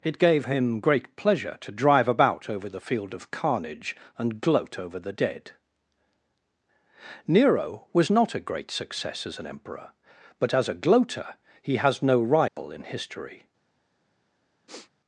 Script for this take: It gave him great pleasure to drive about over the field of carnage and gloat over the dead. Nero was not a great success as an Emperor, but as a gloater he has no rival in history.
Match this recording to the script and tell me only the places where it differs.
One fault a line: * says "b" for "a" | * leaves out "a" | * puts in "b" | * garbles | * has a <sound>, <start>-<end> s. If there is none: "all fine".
* has a dropout, 12.5-12.6 s
* has a sniff, 14.7-14.9 s